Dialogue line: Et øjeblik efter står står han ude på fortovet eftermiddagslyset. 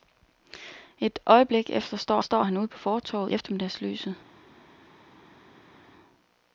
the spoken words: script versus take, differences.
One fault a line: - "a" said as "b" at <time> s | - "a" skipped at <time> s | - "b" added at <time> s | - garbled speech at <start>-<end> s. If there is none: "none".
none